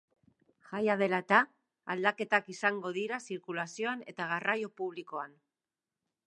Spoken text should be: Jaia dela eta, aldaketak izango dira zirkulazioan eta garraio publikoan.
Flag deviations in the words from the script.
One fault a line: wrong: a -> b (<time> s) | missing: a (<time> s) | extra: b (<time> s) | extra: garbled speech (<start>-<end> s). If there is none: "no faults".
no faults